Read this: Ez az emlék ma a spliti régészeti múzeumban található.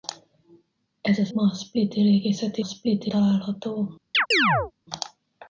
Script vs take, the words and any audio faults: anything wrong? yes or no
yes